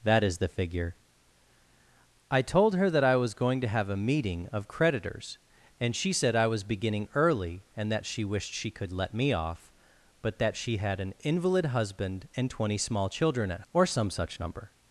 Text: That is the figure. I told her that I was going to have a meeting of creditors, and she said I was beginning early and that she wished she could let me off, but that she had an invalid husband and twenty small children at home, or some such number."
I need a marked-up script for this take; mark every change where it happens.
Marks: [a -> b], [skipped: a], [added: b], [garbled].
That is the figure. I told her that I was going to have a meeting of creditors, and she said I was beginning early and that she wished she could let me off, but that she had an invalid husband and twenty small children at [skipped: home,] or some such number."